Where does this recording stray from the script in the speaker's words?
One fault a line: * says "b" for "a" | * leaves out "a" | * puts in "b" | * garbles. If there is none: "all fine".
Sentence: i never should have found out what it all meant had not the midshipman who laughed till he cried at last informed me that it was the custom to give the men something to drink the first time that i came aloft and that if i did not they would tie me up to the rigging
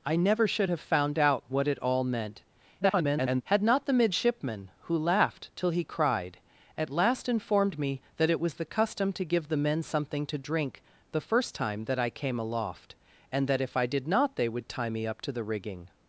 * garbles